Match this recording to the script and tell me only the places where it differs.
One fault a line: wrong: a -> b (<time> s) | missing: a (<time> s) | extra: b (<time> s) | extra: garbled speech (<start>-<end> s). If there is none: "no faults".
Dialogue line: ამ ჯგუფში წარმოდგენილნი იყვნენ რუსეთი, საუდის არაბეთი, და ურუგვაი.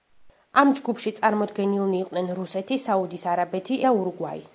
no faults